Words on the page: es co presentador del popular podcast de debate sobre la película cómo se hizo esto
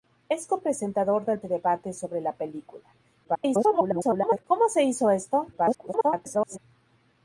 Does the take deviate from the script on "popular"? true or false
true